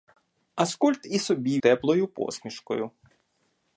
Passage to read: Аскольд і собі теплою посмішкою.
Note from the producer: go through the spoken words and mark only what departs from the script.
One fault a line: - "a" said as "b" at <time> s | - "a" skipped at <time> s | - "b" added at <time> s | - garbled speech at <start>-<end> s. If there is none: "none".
none